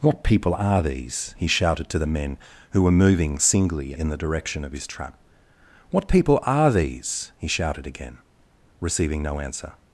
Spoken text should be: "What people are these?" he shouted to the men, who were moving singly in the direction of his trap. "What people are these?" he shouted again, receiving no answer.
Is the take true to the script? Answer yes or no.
yes